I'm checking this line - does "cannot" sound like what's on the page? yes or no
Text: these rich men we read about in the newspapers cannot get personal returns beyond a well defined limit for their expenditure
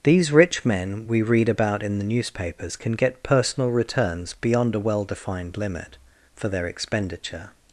no